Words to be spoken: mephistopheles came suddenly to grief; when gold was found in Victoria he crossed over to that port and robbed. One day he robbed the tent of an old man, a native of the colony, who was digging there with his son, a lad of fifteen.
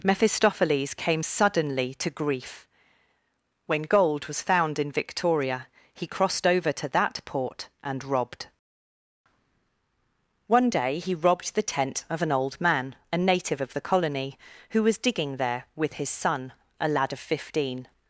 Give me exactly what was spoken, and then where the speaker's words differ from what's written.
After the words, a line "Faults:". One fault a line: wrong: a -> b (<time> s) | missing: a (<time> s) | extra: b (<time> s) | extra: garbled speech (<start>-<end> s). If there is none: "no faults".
mephistopheles came suddenly to grief; when gold was found in Victoria he crossed over to that port and robbed. One day he robbed the tent of an old man, a native of the colony, who was digging there with his son, a lad of fifteen.
Faults:
no faults